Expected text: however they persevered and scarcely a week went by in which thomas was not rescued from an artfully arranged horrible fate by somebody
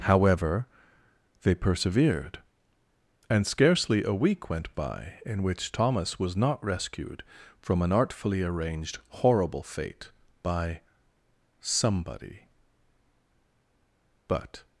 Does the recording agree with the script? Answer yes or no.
no